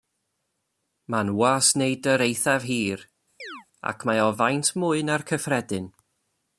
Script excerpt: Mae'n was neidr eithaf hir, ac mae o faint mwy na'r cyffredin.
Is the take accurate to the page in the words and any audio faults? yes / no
no